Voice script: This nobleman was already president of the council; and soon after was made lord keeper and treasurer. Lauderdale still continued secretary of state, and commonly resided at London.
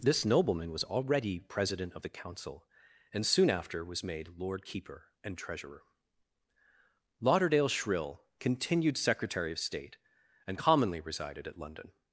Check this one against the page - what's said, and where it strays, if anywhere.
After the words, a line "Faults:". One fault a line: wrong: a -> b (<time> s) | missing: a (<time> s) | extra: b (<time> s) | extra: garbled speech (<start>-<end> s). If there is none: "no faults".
This nobleman was already president of the council; and soon after was made lord keeper and treasurer. Lauderdale shrill continued secretary of state, and commonly resided at London.
Faults:
wrong: still -> shrill (7.7 s)